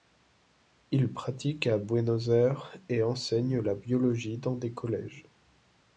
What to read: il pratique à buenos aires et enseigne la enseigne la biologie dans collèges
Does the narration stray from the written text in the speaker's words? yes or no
yes